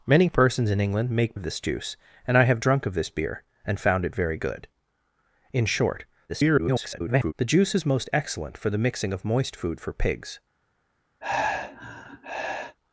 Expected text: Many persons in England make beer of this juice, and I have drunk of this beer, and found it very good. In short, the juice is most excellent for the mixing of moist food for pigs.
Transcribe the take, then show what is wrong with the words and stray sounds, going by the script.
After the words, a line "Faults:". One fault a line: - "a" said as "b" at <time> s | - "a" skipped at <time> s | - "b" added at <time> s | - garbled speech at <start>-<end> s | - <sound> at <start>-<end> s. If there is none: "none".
Many persons in England make of this juice, and I have drunk of this beer, and found it very good. In short, [garbled] the juice is most excellent for the mixing of moist food for pigs.
Faults:
- "beer" skipped at 1.4 s
- garbled speech at 6.3-7.3 s
- sigh at 11.2-12.8 s